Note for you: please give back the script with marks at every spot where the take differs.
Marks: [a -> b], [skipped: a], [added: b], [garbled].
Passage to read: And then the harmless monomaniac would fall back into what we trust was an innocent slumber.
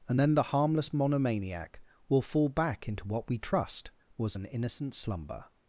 And then the harmless monomaniac [would -> will] fall back into what we trust was an innocent slumber.